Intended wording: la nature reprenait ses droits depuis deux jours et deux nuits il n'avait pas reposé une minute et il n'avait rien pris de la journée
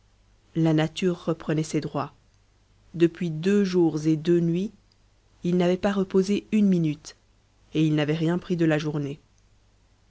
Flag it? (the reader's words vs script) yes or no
no